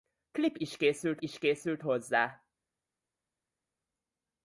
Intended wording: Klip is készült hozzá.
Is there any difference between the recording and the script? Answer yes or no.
yes